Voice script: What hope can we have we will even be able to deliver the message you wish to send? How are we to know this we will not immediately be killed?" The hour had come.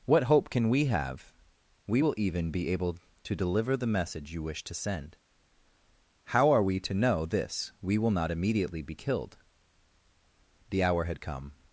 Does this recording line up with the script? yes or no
yes